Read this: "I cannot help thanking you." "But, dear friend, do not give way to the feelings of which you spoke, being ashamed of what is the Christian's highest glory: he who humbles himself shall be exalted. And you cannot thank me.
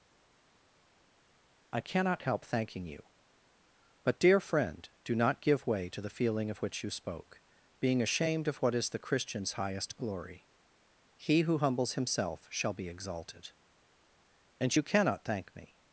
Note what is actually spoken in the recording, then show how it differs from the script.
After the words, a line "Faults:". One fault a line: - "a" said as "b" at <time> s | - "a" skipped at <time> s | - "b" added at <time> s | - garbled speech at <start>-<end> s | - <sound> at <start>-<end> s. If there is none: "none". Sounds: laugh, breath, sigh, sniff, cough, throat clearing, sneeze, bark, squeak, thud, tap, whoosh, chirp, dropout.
"I cannot help thanking you." "But, dear friend, do not give way to the feeling of which you spoke, being ashamed of what is the Christian's highest glory: he who humbles himself shall be exalted. And you cannot thank me.
Faults:
- "feelings" said as "feeling" at 6.2 s